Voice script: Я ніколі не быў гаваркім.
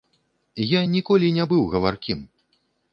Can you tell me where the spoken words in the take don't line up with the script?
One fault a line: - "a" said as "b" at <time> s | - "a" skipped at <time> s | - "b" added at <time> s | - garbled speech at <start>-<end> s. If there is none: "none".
none